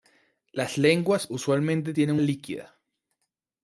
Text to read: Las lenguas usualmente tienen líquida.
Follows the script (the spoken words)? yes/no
yes